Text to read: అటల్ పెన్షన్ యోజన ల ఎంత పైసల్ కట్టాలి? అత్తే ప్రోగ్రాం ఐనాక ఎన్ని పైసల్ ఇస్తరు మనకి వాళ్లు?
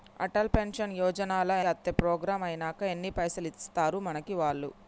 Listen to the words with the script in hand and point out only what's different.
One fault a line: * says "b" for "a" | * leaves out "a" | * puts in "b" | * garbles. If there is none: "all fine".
* leaves out "ఎంత పైసల్ కట్టాలి"